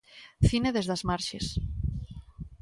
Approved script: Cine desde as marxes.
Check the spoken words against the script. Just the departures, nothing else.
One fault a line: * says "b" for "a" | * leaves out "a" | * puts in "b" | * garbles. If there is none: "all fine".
all fine